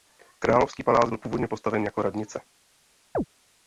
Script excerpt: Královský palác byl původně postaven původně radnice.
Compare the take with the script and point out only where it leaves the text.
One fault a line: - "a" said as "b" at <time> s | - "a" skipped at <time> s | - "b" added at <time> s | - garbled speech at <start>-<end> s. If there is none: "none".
- "původně" said as "jako" at 1.8 s